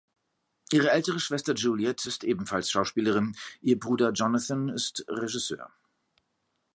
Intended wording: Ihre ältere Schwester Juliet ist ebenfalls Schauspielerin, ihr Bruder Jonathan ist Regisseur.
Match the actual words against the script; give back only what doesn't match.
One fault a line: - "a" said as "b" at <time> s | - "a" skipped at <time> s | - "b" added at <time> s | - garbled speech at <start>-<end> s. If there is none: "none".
none